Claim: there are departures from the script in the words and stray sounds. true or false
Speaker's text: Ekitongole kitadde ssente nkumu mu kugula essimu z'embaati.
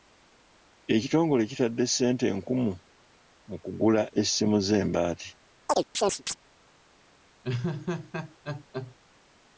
true